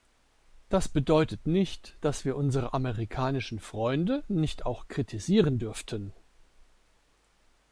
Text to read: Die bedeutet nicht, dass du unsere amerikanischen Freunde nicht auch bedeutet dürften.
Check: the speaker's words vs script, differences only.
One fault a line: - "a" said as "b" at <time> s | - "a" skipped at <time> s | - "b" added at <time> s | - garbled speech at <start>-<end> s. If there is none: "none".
- "Die" said as "Das" at 0.7 s
- "du" said as "wir" at 2.2 s
- "bedeutet" said as "kritisieren" at 4.9 s